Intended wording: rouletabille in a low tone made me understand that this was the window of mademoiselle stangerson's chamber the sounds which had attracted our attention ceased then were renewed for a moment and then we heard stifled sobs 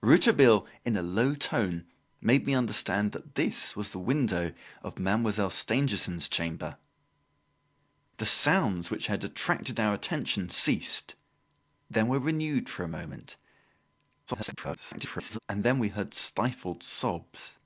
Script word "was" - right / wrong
right